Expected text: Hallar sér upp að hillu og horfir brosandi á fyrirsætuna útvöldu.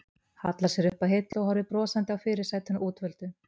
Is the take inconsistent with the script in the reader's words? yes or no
no